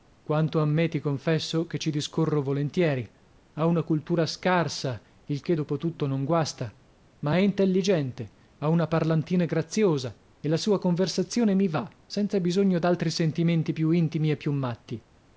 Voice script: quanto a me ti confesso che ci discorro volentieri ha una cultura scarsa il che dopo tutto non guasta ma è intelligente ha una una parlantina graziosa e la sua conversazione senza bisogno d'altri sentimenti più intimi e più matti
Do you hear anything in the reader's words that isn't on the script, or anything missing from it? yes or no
yes